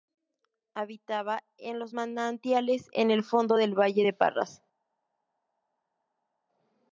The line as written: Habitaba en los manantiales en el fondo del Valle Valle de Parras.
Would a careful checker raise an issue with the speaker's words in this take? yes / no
yes